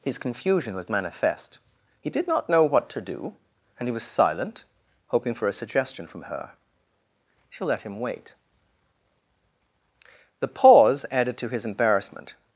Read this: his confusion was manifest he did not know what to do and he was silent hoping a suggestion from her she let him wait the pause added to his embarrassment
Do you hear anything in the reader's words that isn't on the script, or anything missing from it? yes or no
yes